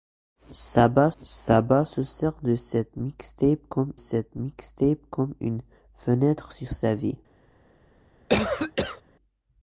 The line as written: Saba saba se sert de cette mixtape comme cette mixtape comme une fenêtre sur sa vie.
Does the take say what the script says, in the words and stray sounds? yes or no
no